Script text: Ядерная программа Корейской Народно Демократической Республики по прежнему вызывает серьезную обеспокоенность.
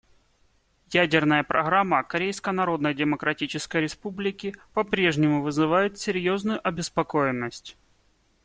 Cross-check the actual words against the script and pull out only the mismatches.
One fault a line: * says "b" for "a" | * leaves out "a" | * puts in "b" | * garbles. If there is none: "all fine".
all fine